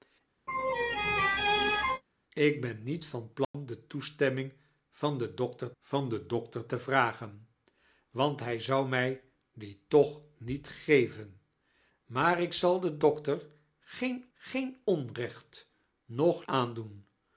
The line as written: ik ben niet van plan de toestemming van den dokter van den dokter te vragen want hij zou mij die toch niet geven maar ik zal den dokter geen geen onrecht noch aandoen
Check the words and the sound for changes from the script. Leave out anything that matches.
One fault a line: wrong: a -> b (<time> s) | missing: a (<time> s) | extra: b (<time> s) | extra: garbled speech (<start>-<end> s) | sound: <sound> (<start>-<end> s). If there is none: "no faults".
sound: laugh (0.5-2.0 s)
sound: dropout (3.4-3.5 s)